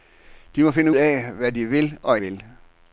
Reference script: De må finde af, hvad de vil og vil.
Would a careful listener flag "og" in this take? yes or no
no